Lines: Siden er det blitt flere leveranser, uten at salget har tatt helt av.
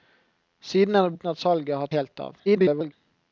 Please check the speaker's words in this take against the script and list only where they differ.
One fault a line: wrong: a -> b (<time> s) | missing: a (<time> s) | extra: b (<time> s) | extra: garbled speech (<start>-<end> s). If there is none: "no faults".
missing: blitt flere leveranser (1.1 s)
missing: tatt (1.9 s)
extra: garbled speech (2.4-2.9 s)